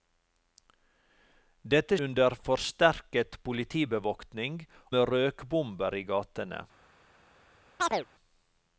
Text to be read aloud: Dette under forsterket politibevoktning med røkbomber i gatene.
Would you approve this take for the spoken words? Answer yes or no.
yes